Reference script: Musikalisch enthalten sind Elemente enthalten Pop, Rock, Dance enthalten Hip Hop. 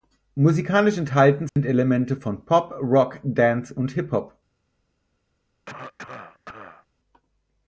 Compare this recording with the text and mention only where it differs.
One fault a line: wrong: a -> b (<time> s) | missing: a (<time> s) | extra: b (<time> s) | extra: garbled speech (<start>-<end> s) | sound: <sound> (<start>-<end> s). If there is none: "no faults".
sound: dropout (1.5-1.6 s)
wrong: enthalten -> von (2.1 s)
wrong: enthalten -> und (3.7 s)
sound: cough (5.7-6.9 s)